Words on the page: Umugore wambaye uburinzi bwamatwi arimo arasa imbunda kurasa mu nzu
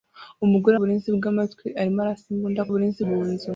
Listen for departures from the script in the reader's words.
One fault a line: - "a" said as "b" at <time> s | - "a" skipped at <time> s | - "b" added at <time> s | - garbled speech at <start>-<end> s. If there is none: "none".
- "wambaye" skipped at 0.8 s
- "kurasa" said as "uburinzi" at 2.7 s